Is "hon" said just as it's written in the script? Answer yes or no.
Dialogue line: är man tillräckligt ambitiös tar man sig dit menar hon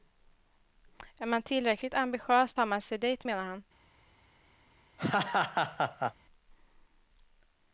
no